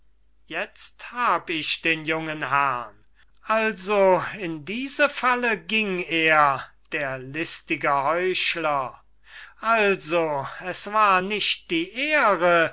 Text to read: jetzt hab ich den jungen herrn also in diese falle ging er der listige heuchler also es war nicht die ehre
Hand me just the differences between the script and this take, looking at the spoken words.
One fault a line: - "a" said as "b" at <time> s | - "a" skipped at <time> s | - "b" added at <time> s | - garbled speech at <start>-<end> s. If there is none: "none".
none